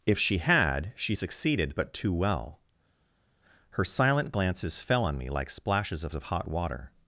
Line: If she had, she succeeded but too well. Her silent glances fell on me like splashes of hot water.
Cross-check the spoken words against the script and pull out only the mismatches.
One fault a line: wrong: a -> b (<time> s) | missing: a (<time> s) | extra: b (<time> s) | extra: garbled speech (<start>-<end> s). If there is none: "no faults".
extra: of (6.1 s)